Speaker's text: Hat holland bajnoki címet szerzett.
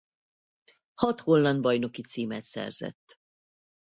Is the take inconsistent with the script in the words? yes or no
no